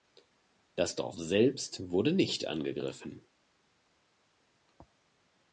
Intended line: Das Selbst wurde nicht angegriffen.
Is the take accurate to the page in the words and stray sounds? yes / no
no